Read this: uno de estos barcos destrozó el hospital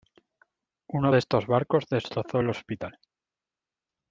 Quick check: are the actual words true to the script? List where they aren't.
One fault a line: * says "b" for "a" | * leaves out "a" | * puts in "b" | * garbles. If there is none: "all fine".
all fine